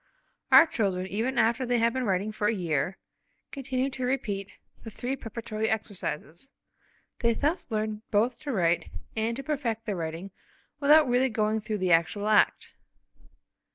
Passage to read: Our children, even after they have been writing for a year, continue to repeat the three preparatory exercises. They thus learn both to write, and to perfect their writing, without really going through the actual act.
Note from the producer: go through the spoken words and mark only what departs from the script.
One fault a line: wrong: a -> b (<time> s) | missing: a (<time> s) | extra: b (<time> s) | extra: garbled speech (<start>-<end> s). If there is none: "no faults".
no faults